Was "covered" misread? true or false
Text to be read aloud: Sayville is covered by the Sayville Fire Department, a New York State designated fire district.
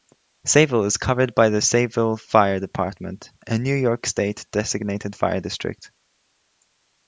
false